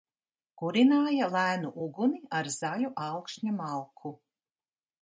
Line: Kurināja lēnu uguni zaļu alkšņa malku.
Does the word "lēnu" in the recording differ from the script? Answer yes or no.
no